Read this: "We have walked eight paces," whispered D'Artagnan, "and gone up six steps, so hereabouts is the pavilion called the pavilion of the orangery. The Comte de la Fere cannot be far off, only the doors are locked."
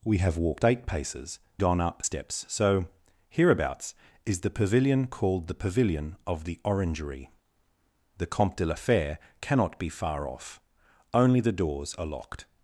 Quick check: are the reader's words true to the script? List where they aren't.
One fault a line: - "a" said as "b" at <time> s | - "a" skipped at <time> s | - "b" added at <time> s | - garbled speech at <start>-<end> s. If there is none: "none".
- "whispered D'Artagnan and" skipped at 1.4 s
- "six" skipped at 2.0 s